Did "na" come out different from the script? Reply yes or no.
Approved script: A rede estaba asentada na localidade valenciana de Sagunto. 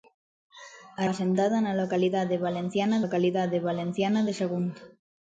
yes